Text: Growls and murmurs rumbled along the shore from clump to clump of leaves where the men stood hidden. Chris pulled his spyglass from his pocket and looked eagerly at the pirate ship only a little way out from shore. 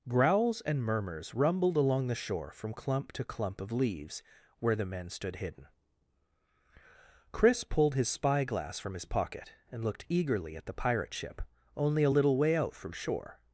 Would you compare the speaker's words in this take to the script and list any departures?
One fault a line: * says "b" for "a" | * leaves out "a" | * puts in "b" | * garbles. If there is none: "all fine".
all fine